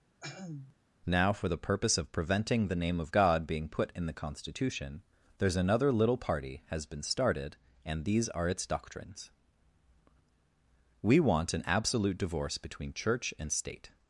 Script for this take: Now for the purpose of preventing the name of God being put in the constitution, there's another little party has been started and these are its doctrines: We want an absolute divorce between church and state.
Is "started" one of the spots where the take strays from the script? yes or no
no